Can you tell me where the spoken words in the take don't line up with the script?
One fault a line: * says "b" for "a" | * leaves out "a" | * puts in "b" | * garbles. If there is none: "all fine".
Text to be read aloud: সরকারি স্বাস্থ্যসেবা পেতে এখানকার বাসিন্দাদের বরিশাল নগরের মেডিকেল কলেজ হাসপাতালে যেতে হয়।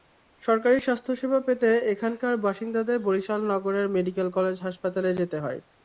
all fine